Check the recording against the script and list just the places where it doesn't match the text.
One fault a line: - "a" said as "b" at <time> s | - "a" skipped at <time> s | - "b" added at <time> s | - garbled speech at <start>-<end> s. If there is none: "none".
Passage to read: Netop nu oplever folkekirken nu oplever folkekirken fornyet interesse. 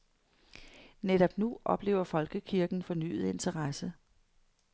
- "nu oplever folkekirken" skipped at 2.8 s